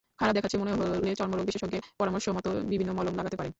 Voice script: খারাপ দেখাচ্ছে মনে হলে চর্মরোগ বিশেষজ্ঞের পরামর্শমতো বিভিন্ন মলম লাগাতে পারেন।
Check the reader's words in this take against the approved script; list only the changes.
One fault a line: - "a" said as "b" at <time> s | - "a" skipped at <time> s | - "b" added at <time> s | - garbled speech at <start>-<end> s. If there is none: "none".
none